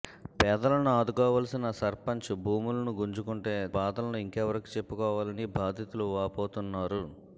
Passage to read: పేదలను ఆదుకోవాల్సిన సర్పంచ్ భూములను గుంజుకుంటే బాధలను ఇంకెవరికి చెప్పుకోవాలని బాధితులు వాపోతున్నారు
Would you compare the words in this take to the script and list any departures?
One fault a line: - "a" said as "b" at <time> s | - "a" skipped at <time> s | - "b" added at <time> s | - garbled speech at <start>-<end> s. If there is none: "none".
none